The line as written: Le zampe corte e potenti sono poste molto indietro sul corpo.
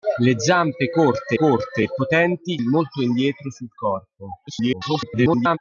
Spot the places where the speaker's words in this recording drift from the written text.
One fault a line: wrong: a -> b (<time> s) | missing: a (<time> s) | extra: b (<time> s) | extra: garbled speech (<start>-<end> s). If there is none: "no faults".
extra: corte (1.3 s)
missing: sono poste (2.6 s)
extra: garbled speech (4.5-5.6 s)